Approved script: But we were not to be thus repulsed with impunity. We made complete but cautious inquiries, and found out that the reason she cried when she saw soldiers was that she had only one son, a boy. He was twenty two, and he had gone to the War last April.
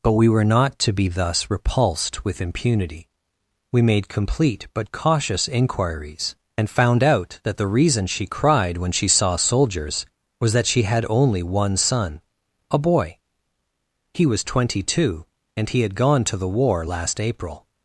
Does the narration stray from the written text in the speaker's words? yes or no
no